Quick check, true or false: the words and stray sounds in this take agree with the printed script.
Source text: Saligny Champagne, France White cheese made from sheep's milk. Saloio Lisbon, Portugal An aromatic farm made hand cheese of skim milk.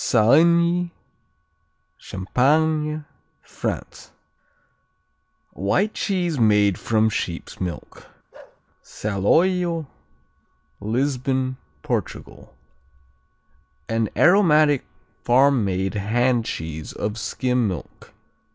false